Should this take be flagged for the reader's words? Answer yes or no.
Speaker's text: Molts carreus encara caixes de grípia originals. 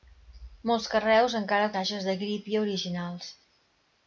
no